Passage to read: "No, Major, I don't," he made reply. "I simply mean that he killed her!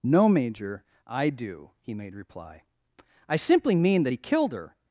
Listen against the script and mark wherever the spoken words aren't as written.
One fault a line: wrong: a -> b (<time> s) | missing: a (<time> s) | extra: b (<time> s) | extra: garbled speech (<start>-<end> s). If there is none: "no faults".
wrong: don't -> do (1.3 s)